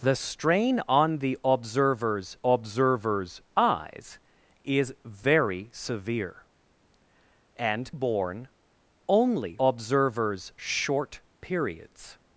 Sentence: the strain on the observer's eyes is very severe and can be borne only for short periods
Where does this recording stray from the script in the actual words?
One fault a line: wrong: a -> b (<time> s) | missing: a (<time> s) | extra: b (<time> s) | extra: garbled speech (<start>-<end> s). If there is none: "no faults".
extra: observer's (2.4 s)
missing: can be (7.9 s)
wrong: for -> observer's (9.6 s)